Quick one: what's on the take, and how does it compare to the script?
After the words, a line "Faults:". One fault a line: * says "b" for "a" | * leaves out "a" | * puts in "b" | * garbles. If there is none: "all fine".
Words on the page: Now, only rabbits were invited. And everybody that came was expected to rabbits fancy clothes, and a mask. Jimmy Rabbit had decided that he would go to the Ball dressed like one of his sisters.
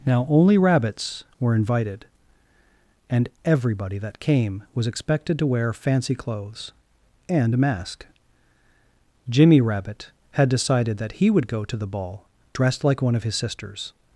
Now, only rabbits were invited. And everybody that came was expected to wear fancy clothes, and a mask. Jimmy Rabbit had decided that he would go to the Ball dressed like one of his sisters.
Faults:
* says "wear" for "rabbits"